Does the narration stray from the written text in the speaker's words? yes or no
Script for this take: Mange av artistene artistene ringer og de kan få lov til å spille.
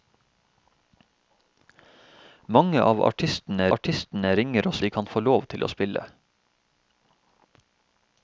no